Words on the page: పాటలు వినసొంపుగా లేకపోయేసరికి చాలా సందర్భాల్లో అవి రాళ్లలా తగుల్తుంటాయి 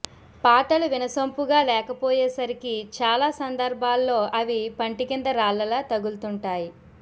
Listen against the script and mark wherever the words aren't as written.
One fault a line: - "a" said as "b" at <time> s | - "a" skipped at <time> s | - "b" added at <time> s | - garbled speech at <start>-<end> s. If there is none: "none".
- "పంటి కింద" added at 4.8 s